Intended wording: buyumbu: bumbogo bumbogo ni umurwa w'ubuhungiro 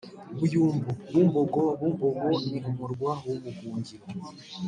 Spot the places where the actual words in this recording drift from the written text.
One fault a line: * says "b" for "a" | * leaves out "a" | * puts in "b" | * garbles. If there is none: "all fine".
all fine